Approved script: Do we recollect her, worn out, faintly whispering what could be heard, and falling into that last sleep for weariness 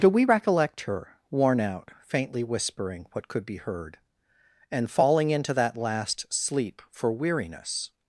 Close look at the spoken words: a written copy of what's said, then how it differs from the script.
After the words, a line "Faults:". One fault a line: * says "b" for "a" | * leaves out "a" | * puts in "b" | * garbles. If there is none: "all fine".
Do we recollect her, worn out, faintly whispering what could be heard, and falling into that last sleep for weariness
Faults:
all fine